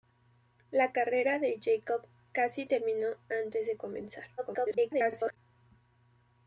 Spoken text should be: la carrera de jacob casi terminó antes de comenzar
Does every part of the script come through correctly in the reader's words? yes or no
no